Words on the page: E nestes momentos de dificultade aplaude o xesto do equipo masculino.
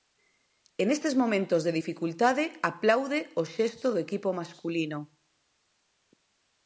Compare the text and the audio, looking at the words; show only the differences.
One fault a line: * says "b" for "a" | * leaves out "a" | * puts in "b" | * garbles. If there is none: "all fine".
all fine